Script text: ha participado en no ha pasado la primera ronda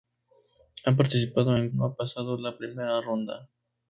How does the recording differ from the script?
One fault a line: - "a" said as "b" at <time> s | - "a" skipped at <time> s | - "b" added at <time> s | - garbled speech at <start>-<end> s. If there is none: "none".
none